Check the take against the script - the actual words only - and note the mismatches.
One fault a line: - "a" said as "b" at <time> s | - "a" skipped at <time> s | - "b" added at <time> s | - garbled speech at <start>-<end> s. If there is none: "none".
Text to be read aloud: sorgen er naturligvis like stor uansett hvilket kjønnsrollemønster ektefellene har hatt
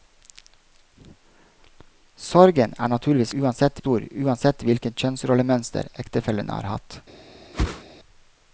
- "like" said as "uansett" at 3.4 s